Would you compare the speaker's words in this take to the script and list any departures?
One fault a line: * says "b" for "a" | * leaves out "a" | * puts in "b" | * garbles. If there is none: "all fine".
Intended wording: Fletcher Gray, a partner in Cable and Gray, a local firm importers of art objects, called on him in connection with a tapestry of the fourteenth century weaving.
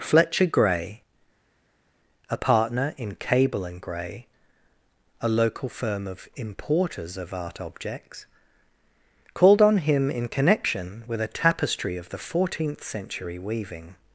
* puts in "of"